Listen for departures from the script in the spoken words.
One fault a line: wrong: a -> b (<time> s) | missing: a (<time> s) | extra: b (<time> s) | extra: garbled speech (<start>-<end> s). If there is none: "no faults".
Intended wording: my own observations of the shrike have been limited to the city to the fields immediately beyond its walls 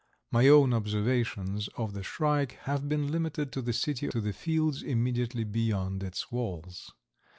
no faults